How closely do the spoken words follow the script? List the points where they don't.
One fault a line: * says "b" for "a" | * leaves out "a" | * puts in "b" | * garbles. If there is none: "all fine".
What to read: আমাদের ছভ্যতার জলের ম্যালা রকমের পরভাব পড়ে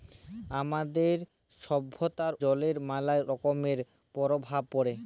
all fine